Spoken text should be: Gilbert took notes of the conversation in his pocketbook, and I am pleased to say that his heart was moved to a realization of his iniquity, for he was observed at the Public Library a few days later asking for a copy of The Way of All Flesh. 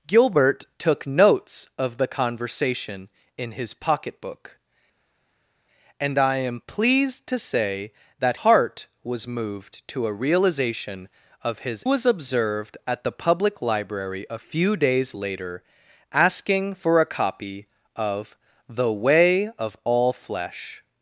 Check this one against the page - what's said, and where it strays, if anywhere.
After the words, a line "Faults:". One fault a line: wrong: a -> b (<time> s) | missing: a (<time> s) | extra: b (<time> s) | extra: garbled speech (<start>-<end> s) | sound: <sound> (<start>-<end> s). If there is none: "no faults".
Gilbert took notes of the conversation in his pocketbook, and I am pleased to say that heart was moved to a realization of his was observed at the Public Library a few days later asking for a copy of The Way of All Flesh.
Faults:
missing: his (8.4 s)
missing: iniquity for he (11.8 s)